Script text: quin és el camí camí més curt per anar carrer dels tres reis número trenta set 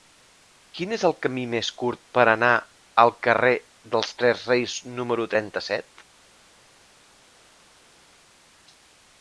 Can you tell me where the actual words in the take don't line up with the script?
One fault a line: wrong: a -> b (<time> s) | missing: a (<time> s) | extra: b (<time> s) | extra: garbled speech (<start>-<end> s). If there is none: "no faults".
missing: camí (1.4 s)
extra: al (3.0 s)